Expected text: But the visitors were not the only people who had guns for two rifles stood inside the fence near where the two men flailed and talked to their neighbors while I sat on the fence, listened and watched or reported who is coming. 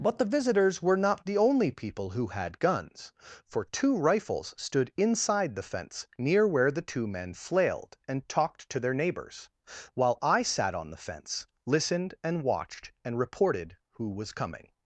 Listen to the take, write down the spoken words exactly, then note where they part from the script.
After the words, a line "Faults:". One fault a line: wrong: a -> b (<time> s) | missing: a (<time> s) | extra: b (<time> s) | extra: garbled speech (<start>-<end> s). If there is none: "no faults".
But the visitors were not the only people who had guns for two rifles stood inside the fence near where the two men flailed and talked to their neighbors while I sat on the fence, listened and watched and reported who was coming.
Faults:
wrong: or -> and (13.1 s)
wrong: is -> was (14.1 s)